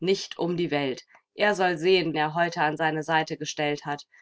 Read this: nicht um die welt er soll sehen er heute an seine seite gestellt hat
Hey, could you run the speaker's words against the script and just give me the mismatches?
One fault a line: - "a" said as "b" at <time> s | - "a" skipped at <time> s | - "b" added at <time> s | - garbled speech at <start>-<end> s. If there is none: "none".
none